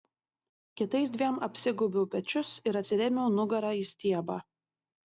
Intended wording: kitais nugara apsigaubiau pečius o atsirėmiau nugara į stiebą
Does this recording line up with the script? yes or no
no